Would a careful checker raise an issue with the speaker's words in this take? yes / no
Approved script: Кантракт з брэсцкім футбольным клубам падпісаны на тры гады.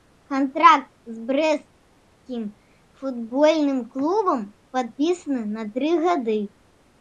no